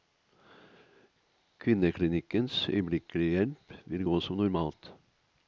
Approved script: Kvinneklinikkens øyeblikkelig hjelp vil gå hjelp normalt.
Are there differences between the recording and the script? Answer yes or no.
yes